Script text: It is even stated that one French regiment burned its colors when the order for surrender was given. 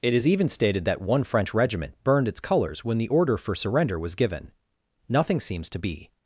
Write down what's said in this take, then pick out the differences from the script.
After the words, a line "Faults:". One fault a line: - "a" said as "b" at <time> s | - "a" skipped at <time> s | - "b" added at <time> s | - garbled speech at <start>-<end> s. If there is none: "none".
It is even stated that one French regiment burned its colors when the order for surrender was given. Nothing seems to be
Faults:
- "Nothing seems to be" added at 5.1 s